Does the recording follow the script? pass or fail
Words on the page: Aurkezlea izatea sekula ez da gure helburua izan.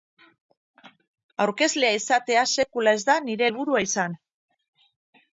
fail